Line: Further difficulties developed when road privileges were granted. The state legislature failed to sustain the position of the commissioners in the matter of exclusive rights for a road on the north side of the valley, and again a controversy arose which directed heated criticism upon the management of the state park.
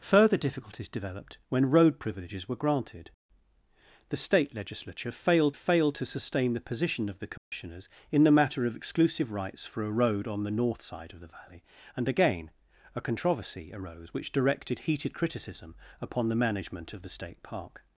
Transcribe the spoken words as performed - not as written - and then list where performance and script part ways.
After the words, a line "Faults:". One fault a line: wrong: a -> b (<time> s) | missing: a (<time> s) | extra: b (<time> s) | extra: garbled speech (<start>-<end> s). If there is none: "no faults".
Further difficulties developed when road privileges were granted. The state legislature failed failed to sustain the position of the commissioners in the matter of exclusive rights for a road on the north side of the valley, and again a controversy arose which directed heated criticism upon the management of the state park.
Faults:
extra: failed (5.5 s)